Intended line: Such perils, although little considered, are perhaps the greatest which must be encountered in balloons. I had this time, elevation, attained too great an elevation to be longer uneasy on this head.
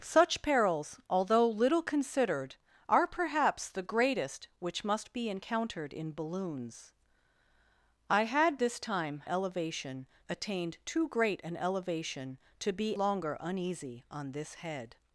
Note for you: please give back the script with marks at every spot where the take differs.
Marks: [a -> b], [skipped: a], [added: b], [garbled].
Such perils, although little considered, are perhaps the greatest which must be encountered in balloons. I had this time, elevation, attained too great an elevation to be longer uneasy on this head.